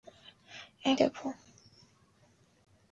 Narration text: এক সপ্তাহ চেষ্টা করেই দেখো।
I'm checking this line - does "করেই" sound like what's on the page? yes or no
no